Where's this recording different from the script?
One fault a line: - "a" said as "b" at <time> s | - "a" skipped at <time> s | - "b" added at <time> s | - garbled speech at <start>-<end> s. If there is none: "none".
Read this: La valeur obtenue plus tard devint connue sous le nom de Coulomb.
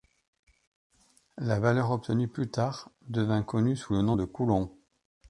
none